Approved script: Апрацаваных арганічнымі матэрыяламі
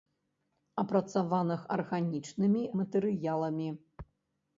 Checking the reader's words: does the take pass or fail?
pass